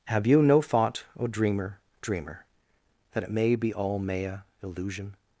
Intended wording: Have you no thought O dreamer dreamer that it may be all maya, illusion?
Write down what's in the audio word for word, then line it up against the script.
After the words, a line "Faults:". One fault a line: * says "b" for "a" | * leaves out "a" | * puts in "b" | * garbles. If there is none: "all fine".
Have you no thought O dreamer dreamer that it may be all maya, illusion?
Faults:
all fine